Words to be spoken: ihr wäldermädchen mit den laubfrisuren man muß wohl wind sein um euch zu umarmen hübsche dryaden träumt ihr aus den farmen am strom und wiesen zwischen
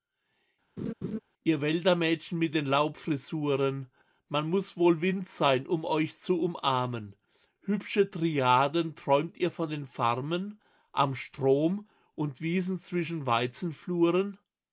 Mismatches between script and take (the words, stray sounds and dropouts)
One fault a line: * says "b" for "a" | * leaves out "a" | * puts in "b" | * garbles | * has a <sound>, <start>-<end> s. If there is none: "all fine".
* has a laugh, 0.8-1.2 s
* says "von" for "aus"